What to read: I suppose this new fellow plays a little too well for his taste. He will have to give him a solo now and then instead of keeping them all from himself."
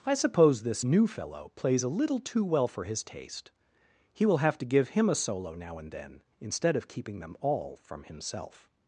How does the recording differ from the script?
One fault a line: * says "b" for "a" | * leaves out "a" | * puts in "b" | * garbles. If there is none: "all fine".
all fine